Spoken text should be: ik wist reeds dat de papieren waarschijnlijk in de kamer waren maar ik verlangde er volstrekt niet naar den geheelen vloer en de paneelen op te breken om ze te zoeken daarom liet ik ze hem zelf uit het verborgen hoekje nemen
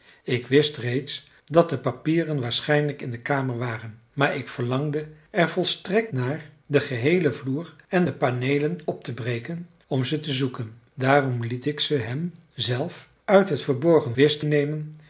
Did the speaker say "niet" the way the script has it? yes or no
no